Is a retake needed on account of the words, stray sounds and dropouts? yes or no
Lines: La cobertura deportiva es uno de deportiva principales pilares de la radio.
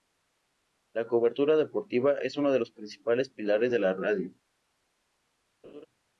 yes